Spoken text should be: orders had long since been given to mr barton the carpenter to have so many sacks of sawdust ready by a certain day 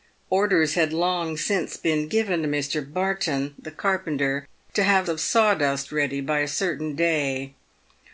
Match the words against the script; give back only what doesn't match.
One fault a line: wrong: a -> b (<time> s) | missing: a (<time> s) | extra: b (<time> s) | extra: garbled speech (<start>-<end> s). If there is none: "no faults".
missing: so many sacks (5.1 s)